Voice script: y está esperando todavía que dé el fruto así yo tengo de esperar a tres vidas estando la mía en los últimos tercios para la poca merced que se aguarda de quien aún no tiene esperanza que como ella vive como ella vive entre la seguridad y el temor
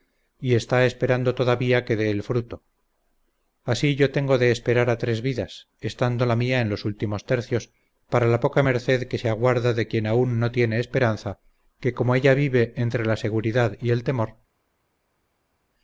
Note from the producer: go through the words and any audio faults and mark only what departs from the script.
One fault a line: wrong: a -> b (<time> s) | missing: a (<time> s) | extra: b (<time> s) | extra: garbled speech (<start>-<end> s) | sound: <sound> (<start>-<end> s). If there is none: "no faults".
missing: como ella vive (12.7 s)